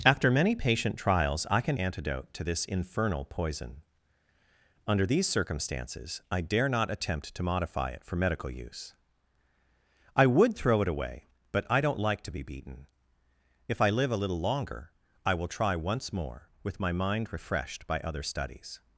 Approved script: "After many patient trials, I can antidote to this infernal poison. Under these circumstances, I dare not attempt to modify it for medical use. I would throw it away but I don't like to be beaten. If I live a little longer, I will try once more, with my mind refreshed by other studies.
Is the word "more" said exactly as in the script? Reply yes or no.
yes